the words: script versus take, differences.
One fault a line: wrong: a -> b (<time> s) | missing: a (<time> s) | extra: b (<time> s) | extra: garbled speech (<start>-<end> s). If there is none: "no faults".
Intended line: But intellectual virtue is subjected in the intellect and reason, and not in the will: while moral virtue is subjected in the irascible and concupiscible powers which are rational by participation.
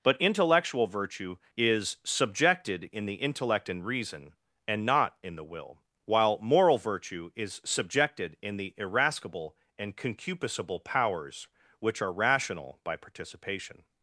no faults